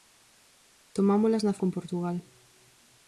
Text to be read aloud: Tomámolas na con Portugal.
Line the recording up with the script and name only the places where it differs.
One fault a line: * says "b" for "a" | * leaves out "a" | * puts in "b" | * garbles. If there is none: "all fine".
all fine